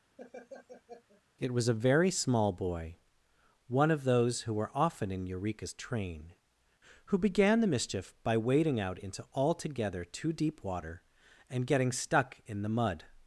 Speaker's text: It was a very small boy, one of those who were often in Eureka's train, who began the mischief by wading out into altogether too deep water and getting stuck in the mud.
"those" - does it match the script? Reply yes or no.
yes